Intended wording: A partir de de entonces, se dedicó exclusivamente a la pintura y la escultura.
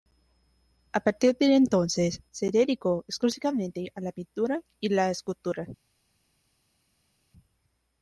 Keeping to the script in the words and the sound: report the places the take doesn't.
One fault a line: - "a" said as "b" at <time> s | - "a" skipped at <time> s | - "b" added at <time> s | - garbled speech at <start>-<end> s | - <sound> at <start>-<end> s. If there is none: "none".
- "de" skipped at 1.6 s